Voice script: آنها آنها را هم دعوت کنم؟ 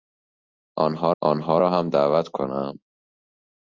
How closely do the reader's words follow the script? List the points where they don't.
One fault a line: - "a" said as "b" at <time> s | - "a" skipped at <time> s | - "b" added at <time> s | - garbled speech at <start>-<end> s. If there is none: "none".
none